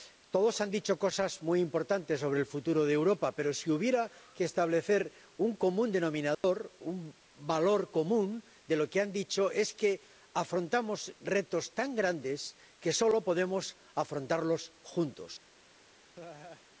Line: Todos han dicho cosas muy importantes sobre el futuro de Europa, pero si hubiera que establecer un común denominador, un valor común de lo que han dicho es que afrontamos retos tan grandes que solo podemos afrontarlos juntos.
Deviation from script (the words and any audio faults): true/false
true